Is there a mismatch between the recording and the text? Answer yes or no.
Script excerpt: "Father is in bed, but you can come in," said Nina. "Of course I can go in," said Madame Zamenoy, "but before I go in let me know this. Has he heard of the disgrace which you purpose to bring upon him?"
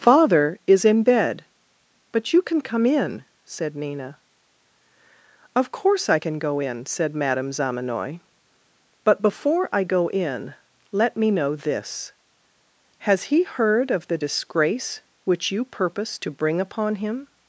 no